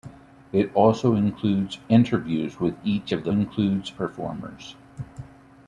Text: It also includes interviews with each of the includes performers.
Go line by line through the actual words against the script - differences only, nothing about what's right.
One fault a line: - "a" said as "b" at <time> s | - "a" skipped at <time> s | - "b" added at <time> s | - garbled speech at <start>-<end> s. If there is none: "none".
none